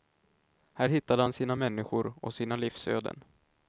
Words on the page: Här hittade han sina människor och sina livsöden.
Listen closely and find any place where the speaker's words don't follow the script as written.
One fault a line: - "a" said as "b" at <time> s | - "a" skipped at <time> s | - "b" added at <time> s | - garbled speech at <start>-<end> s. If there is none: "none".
none